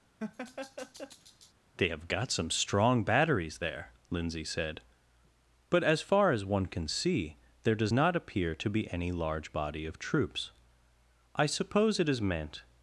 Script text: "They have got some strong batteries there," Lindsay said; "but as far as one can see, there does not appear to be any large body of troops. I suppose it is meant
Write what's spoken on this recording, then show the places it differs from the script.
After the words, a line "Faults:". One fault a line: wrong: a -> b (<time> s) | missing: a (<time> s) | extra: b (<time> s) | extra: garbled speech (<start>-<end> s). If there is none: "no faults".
"They have got some strong batteries there," Lindsay said; "but as far as one can see, there does not appear to be any large body of troops. I suppose it is meant
Faults:
no faults